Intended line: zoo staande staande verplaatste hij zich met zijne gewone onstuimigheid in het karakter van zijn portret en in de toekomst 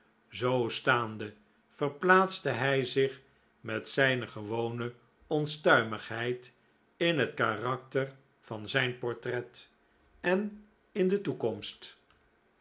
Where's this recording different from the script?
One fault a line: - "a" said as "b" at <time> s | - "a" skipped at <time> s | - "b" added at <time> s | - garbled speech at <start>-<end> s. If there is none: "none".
- "staande" skipped at 1.3 s